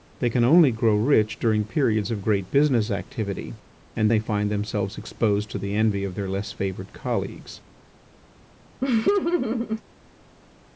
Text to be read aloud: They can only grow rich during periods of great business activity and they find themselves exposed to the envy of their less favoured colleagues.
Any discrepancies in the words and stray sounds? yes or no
yes